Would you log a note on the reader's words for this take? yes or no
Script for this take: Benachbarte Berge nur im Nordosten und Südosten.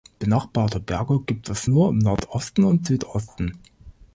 yes